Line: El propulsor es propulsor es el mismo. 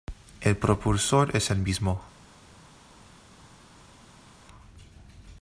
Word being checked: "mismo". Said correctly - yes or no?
yes